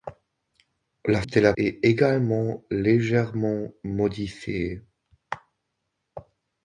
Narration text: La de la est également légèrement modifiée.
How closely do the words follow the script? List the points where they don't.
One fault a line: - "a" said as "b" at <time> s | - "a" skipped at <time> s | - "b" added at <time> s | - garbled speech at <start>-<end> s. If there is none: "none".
none